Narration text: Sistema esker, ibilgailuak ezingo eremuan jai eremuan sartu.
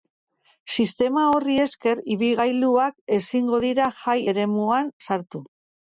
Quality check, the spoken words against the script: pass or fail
fail